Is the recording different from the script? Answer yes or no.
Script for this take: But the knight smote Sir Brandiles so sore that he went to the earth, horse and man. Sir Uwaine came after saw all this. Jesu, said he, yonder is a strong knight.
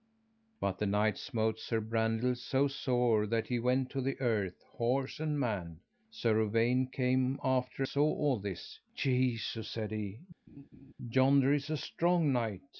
no